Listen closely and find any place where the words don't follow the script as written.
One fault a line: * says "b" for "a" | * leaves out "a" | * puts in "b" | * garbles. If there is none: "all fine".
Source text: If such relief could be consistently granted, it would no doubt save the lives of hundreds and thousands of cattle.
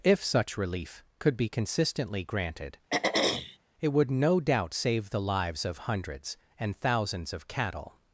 all fine